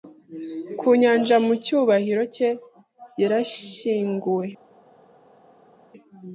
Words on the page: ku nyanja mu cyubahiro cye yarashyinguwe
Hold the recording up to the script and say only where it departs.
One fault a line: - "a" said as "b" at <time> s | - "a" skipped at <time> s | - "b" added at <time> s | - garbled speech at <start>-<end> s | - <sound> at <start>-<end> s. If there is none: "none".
none